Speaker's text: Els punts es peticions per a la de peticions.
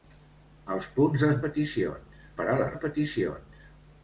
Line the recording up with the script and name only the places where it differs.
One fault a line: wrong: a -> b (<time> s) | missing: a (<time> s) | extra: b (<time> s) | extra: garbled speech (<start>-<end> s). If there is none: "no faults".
no faults